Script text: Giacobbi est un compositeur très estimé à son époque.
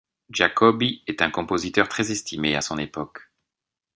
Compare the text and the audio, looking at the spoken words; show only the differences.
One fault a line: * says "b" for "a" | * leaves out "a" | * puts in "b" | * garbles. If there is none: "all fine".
all fine